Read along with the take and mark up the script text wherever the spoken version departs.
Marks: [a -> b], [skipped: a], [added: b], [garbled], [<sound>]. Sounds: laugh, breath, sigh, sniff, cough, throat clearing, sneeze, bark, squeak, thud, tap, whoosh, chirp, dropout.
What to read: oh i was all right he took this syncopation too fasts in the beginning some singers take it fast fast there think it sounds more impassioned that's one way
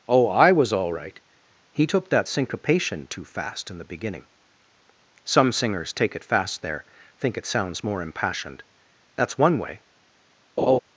oh i was all right he took [this -> that] syncopation too [fasts -> fast] in the beginning some singers take it fast [skipped: fast] there think it sounds more impassioned that's one way [laugh]